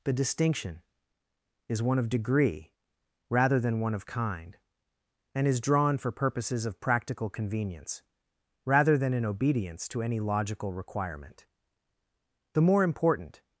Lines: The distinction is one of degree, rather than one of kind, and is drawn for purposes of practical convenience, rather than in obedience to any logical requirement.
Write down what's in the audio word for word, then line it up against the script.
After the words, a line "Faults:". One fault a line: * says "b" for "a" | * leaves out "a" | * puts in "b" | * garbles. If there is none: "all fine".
The distinction is one of degree, rather than one of kind, and is drawn for purposes of practical convenience, rather than in obedience to any logical requirement. The more important
Faults:
* puts in "The more important"